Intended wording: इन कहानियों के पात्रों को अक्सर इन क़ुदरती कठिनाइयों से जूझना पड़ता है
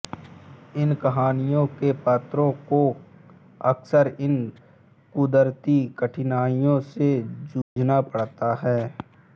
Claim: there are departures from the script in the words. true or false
false